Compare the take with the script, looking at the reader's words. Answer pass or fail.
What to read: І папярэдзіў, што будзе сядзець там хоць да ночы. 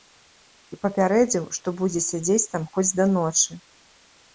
pass